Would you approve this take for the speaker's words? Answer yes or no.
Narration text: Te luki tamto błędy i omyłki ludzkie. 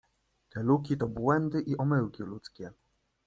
no